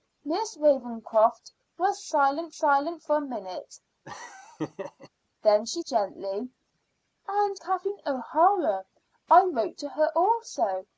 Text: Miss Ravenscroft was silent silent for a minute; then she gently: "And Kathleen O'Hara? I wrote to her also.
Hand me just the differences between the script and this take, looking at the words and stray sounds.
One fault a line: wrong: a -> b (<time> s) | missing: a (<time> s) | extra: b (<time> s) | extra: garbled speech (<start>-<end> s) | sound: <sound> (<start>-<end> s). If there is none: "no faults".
sound: laugh (4.0-5.1 s)